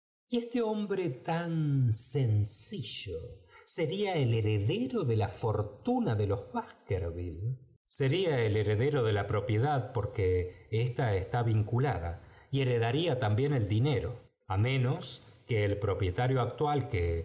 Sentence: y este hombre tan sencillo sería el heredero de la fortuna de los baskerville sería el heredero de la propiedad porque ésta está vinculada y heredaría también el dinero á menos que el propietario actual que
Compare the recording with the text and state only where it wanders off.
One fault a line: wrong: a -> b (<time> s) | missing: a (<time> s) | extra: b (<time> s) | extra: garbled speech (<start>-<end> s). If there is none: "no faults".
no faults